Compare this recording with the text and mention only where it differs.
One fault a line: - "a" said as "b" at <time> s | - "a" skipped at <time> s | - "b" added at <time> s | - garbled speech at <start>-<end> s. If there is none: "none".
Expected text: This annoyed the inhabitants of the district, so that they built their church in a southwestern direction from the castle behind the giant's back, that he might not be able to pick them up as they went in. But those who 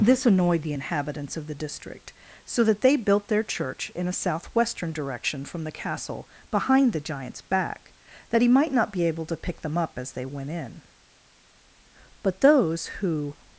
none